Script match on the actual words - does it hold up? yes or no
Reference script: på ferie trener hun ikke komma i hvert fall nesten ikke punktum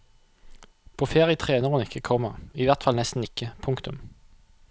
yes